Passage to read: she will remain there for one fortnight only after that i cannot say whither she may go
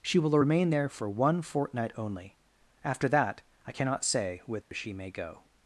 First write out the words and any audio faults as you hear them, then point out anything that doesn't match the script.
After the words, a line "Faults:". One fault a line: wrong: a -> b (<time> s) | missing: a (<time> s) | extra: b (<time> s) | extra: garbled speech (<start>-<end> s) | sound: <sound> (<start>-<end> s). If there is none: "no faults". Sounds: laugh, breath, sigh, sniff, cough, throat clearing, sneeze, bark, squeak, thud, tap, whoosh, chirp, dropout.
she will remain there for one fortnight only after that i cannot say whither she may go
Faults:
sound: dropout (4.6-4.7 s)